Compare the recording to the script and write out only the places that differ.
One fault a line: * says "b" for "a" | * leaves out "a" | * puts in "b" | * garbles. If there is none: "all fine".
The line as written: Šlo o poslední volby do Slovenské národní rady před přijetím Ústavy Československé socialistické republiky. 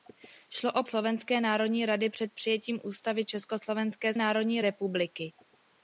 * leaves out "poslední volby do"
* says "národní" for "socialistické"